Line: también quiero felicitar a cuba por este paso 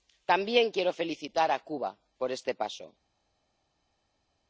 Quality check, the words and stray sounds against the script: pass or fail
pass